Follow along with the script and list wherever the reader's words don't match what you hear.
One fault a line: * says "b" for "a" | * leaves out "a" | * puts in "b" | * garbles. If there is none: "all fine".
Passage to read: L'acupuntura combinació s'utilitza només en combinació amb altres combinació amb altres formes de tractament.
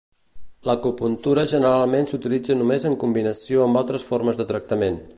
* says "generalment" for "combinació"
* leaves out "combinació amb altres"